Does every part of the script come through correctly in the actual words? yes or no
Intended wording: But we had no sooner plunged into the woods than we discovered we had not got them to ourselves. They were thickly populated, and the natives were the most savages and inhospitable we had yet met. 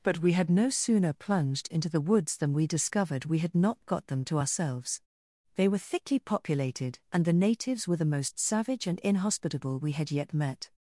no